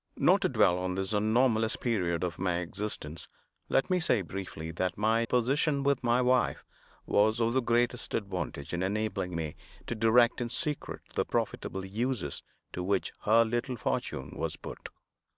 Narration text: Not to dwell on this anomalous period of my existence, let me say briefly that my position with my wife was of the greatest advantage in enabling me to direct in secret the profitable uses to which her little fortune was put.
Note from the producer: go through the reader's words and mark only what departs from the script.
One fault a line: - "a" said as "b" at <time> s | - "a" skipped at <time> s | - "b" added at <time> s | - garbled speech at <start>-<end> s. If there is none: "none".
none